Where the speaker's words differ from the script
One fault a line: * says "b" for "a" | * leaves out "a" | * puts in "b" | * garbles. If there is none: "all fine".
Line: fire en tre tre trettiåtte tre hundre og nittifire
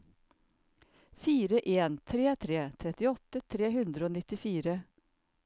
all fine